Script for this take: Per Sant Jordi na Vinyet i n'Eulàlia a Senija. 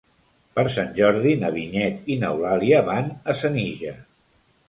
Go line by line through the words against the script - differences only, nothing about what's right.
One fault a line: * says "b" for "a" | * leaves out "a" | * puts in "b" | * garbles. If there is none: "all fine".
* puts in "van"